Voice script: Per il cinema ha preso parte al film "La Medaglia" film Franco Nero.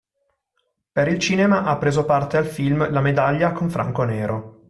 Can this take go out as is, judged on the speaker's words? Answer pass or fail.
fail